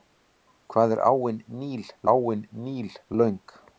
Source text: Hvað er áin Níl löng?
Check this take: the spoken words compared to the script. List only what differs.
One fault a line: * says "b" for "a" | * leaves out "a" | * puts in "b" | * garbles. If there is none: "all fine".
* puts in "áin Níl"